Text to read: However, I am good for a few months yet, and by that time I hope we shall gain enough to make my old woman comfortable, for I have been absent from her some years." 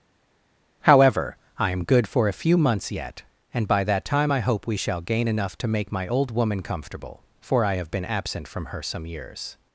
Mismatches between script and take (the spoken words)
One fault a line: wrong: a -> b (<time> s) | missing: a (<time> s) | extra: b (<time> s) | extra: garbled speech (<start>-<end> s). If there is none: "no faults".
no faults